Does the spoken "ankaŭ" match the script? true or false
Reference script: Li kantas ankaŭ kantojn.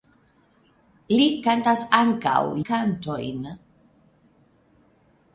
true